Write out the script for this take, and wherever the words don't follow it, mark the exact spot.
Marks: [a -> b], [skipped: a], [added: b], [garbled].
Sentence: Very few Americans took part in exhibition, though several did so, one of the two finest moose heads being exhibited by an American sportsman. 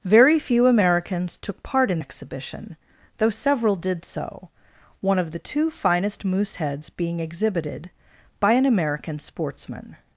Very few Americans took part in exhibition, though several did so, one of the two finest moose heads being exhibited by an American sportsman.